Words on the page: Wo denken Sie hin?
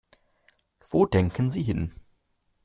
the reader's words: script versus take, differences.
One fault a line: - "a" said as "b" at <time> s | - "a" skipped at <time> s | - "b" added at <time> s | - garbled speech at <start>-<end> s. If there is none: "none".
none